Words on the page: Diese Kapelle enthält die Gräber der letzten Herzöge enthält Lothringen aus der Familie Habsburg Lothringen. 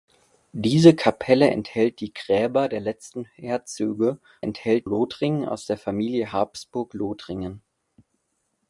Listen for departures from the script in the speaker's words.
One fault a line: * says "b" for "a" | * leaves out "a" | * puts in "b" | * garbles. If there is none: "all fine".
all fine